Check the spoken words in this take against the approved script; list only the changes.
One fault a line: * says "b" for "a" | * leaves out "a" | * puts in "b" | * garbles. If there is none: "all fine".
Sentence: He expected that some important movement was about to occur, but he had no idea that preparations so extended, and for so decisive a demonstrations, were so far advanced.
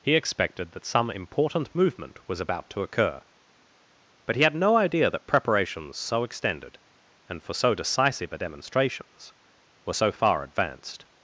all fine